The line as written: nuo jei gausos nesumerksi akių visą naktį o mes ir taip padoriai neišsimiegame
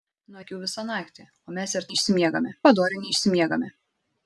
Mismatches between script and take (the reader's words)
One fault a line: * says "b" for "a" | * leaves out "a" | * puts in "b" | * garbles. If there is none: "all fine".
* leaves out "jei gausos nesumerksi"
* says "neišsimiegame" for "taip"